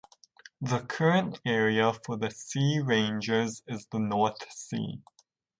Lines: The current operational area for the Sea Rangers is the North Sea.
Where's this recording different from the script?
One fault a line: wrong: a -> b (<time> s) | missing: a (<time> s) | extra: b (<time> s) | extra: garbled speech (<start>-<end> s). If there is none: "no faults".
missing: operational (1.4 s)